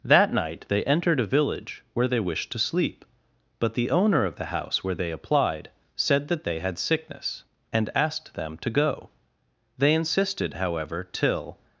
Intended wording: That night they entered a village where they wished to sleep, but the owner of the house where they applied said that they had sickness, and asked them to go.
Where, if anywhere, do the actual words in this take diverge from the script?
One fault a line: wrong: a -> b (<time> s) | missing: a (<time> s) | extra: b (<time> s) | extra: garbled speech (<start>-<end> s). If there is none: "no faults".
extra: They insisted however till (9.8 s)